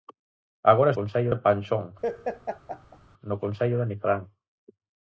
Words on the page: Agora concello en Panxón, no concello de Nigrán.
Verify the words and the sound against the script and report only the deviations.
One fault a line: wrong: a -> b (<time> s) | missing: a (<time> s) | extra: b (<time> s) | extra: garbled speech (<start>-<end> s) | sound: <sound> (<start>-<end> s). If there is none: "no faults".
sound: laugh (2.0-3.0 s)